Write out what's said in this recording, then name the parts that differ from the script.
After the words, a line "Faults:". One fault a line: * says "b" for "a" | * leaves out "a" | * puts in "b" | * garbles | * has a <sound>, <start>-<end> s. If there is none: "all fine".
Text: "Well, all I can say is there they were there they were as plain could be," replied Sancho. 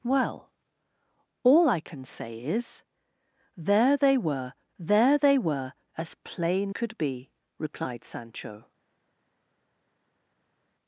"Well, all I can say is there they were there they were as plain could be," replied Sancho.
Faults:
all fine